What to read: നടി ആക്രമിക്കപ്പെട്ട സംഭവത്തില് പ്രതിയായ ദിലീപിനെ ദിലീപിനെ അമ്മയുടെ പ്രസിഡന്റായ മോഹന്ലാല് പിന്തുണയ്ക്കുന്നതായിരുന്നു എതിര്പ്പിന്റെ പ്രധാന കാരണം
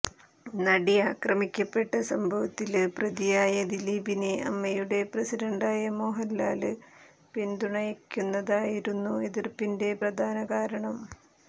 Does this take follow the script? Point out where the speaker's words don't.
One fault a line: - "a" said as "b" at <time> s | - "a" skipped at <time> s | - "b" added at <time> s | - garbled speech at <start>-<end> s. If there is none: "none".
- "ദിലീപിനെ" skipped at 4.3 s